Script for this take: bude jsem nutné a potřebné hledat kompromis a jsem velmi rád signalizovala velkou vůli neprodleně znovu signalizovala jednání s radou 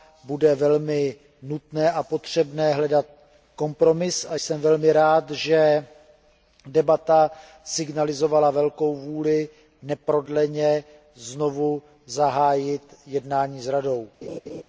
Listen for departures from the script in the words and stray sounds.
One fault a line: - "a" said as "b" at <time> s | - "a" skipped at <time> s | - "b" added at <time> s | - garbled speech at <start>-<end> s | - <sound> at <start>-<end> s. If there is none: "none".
- "jsem" said as "velmi" at 0.6 s
- "že debata" added at 5.3 s
- "signalizovala" said as "zahájit" at 12.1 s
- laugh at 14.2-14.6 s